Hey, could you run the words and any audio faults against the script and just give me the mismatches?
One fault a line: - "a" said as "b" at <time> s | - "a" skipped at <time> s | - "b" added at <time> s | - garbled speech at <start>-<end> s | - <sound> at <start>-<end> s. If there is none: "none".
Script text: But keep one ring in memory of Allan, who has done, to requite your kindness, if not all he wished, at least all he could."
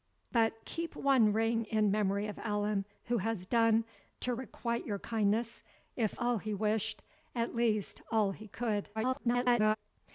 - "not" skipped at 6.2 s
- garbled speech at 8.9-9.8 s